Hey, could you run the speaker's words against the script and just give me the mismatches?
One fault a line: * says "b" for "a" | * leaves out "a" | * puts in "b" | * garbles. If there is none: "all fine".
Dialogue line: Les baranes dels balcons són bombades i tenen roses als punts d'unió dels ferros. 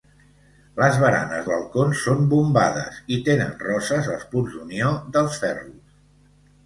* leaves out "dels"